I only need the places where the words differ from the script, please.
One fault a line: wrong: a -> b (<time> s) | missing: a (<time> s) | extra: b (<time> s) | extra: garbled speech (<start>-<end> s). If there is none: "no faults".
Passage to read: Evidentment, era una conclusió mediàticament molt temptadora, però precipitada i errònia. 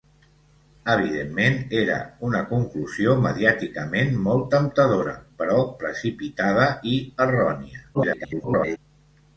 extra: garbled speech (7.9-8.8 s)